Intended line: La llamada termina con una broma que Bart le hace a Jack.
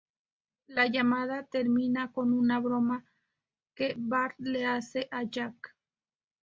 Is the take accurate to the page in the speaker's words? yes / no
yes